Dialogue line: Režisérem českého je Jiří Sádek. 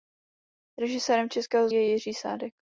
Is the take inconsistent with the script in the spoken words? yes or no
no